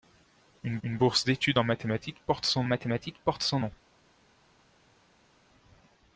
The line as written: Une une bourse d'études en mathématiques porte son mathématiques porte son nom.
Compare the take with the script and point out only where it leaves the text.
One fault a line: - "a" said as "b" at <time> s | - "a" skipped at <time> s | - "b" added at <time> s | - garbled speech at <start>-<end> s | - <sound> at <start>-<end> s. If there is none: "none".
none